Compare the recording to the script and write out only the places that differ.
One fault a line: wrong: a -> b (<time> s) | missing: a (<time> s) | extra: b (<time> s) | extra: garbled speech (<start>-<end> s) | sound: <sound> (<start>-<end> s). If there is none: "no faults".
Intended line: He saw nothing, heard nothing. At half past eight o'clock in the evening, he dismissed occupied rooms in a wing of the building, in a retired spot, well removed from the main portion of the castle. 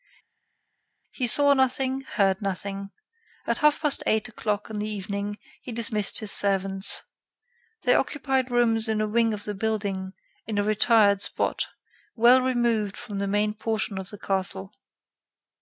extra: his servants They (6.2 s)